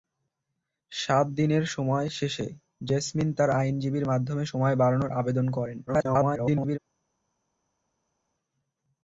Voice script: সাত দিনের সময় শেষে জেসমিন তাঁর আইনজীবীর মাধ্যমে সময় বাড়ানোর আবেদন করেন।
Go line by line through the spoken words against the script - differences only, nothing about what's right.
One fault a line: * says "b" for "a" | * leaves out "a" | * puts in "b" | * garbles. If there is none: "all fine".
* garbles